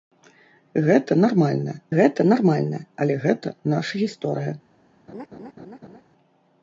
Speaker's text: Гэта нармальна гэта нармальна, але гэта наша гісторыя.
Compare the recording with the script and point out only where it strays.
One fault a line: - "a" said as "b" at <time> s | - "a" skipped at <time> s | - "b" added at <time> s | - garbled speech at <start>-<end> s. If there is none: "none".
none